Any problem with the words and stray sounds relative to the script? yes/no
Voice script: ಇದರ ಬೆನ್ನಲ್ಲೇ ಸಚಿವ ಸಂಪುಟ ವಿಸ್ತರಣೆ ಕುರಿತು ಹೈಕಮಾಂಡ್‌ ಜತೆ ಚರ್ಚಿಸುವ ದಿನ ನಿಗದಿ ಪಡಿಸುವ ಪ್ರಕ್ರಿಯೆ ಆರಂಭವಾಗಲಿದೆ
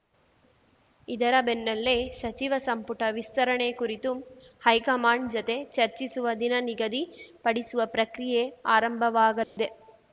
yes